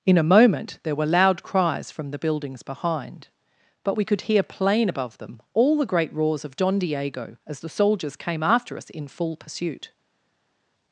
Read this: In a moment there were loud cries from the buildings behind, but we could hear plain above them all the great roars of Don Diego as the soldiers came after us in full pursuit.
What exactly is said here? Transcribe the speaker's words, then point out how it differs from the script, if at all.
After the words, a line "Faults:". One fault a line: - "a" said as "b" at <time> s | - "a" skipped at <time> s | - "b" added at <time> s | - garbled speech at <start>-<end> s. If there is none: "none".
In a moment there were loud cries from the buildings behind, but we could hear plain above them all the great roars of Don Diego as the soldiers came after us in full pursuit.
Faults:
none